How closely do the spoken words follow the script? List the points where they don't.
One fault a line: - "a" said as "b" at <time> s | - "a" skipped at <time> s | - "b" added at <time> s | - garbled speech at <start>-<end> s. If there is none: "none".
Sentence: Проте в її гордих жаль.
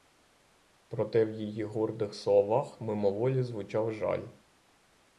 - "словах мимоволі звучав" added at 2.1 s